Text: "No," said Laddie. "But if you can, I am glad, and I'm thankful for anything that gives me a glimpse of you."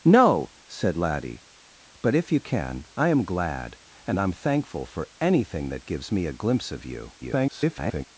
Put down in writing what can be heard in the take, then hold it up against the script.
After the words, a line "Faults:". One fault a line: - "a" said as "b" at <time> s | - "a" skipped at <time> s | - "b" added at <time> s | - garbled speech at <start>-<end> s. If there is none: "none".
"No," said Laddie. "But if you can, I am glad, and I'm thankful for anything that gives me a glimpse of you." [garbled]
Faults:
- garbled speech at 7.2-8.0 s